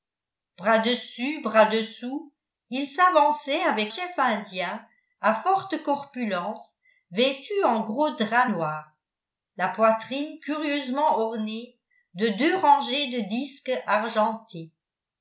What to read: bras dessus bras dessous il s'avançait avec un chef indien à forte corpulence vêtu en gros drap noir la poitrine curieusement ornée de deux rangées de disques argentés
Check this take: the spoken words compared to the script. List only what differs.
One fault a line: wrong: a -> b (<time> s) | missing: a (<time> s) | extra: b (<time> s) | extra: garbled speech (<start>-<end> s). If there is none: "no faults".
missing: un (3.9 s)